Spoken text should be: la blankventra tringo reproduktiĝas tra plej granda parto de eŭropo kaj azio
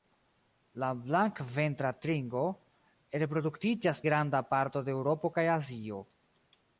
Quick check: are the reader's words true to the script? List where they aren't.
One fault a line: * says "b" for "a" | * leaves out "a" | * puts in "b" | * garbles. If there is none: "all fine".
* leaves out "tra plej"